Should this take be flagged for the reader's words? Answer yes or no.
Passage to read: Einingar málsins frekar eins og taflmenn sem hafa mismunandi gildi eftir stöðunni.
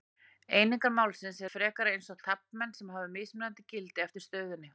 no